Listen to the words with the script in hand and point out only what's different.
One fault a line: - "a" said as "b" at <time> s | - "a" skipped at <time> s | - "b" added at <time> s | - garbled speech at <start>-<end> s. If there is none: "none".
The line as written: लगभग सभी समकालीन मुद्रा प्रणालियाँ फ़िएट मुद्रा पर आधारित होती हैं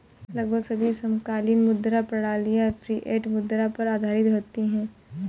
none